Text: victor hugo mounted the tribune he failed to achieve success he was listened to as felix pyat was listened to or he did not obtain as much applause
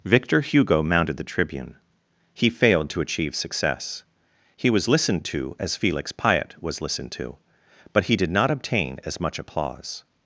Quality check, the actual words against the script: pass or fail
fail